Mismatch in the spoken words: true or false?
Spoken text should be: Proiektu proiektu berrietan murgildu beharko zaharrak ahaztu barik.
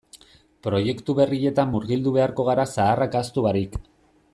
true